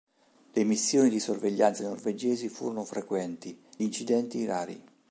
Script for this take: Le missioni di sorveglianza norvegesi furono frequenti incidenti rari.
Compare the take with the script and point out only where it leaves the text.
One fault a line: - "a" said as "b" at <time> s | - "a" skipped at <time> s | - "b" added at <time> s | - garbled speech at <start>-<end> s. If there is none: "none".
none